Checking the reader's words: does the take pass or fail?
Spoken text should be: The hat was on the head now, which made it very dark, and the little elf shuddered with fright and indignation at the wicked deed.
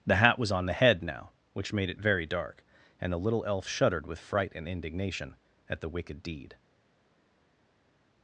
pass